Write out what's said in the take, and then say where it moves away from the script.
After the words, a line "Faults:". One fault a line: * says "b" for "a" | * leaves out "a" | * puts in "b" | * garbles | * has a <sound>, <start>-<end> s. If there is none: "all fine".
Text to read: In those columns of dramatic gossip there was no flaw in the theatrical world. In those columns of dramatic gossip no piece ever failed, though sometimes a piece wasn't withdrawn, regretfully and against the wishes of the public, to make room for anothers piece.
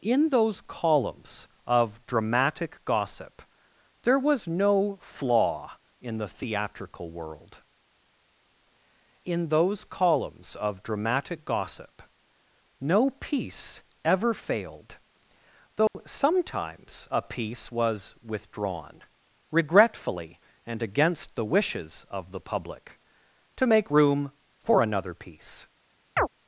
In those columns of dramatic gossip there was no flaw in the theatrical world. In those columns of dramatic gossip no piece ever failed, though sometimes a piece was withdrawn, regretfully and against the wishes of the public, to make room for another piece.
Faults:
* has a dropout, 15.9-15.9 s
* says "was" for "wasn't"
* says "another" for "anothers"
* has a chirp, 26.2-26.3 s